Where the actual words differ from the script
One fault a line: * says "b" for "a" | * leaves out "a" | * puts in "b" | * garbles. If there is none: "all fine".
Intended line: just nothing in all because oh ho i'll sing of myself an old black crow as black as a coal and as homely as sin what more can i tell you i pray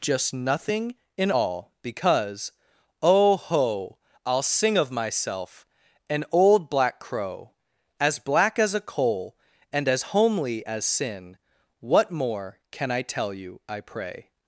all fine